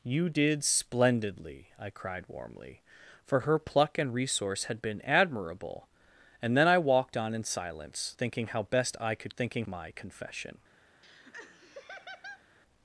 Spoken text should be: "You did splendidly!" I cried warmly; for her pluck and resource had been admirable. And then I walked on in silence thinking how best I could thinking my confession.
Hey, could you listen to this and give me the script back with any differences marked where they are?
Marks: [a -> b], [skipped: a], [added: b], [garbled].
"You did splendidly!" I cried warmly; for her pluck and resource had been admirable. And then I walked on in silence thinking how best I could thinking my confession.